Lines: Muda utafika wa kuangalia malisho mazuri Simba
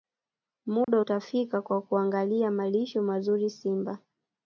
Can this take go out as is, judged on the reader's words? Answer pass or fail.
pass